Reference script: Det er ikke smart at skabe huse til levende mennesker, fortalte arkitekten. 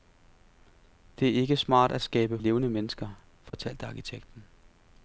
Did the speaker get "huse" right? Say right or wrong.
wrong